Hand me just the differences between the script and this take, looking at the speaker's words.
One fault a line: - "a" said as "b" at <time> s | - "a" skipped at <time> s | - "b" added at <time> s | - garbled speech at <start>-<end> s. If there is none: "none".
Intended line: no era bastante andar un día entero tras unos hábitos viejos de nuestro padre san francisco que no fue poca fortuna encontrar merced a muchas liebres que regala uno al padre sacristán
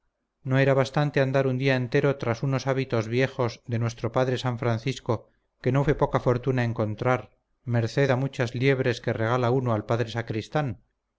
none